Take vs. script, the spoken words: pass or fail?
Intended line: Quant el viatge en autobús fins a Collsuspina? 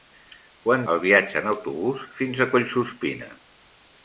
pass